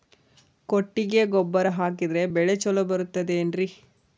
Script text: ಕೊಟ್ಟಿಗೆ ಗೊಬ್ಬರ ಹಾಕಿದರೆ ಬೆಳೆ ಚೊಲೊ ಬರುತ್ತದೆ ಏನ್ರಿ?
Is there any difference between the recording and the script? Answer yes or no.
no